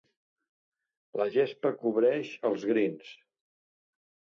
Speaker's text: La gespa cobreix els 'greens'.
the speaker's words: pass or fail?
pass